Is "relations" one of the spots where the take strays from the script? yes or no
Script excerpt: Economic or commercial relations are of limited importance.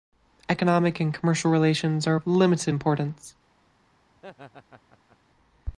no